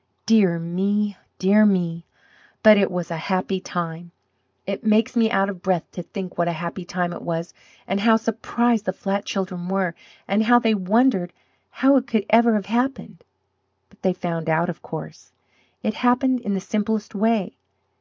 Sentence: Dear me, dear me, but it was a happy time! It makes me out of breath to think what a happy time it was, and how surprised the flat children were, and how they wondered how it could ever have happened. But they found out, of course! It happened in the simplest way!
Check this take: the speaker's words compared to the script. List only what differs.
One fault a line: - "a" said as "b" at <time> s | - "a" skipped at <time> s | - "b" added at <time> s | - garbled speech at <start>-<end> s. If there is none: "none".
none